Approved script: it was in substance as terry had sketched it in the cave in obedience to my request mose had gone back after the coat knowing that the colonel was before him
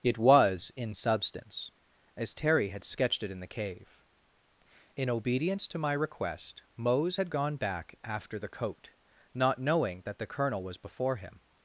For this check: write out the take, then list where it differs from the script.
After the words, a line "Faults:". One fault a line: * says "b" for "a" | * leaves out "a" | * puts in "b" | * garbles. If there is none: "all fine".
it was in substance as terry had sketched it in the cave in obedience to my request mose had gone back after the coat not knowing that the colonel was before him
Faults:
* puts in "not"